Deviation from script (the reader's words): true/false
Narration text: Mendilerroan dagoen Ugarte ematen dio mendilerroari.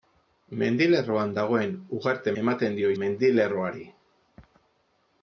false